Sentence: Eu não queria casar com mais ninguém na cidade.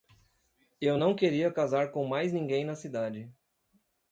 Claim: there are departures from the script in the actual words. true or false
false